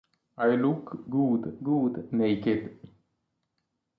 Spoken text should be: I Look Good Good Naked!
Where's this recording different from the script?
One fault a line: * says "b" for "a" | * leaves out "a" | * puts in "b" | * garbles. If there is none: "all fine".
all fine